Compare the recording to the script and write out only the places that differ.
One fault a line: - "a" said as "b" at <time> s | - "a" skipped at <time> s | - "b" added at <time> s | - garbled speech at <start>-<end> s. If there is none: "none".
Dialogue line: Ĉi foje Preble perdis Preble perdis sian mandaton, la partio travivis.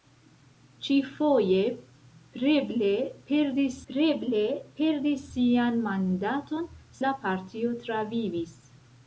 none